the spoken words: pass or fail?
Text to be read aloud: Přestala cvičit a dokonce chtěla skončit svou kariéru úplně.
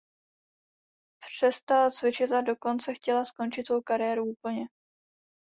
pass